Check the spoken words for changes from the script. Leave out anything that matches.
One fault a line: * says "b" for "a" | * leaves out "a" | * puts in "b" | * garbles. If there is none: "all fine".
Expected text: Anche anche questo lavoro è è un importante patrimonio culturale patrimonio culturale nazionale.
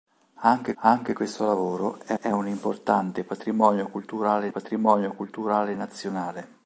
all fine